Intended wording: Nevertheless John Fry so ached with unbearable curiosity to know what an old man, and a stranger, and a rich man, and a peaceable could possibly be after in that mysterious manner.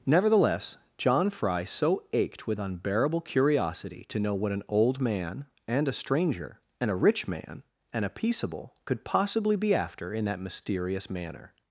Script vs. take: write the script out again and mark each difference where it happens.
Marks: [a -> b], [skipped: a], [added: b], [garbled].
Nevertheless John Fry so ached with unbearable curiosity to know what an old man, and a stranger, and a rich man, and a peaceable could possibly be after in that mysterious manner.